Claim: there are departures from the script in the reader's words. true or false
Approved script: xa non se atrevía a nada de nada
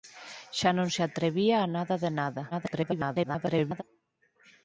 true